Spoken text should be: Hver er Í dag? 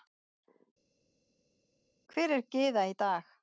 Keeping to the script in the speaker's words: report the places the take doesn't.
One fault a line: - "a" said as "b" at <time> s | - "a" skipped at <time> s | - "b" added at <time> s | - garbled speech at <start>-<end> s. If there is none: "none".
- "Gyða" added at 2.6 s